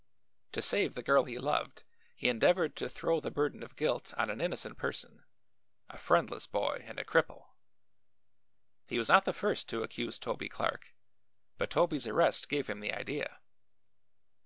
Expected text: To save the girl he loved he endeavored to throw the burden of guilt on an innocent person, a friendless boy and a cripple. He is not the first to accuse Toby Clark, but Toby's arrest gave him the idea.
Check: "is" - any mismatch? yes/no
yes